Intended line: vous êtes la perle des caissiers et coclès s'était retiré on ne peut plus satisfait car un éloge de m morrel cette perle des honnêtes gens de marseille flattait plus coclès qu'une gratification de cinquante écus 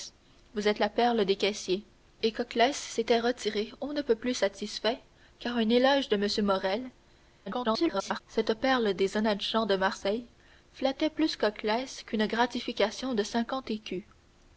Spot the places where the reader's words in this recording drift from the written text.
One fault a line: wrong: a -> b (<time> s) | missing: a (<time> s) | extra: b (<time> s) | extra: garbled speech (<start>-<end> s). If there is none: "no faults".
extra: garbled speech (7.5-8.2 s)